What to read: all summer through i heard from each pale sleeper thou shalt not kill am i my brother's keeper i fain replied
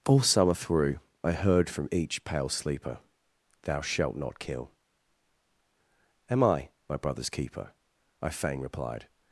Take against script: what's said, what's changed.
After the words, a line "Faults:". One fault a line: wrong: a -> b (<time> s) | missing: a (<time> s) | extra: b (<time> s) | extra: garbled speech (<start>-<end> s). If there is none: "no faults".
all summer through i heard from each pale sleeper thou shalt not kill am i my brother's keeper i fain replied
Faults:
no faults